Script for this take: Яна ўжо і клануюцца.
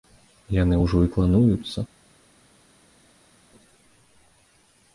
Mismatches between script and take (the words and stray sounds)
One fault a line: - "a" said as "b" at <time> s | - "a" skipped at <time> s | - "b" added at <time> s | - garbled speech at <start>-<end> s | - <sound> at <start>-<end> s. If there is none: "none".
- "Яна" said as "Яны" at 0.6 s